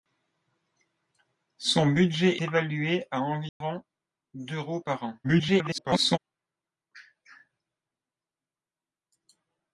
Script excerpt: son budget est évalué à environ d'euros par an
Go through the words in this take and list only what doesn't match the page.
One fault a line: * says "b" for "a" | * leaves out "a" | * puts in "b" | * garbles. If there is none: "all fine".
* leaves out "est"
* garbles